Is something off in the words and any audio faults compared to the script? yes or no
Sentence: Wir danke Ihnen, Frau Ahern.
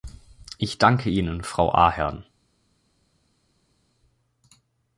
yes